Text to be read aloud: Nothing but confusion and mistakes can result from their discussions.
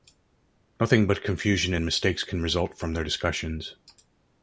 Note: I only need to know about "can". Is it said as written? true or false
true